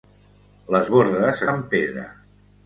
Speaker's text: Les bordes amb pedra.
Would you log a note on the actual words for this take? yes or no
no